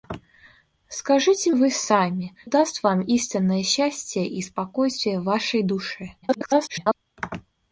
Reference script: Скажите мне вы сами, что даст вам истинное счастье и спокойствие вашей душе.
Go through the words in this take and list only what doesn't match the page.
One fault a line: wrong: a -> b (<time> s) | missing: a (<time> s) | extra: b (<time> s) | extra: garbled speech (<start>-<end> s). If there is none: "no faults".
missing: мне (1.5 s)
missing: что (2.3 s)
extra: garbled speech (6.2-6.9 s)